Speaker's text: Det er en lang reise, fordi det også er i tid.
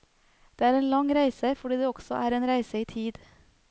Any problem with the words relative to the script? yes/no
yes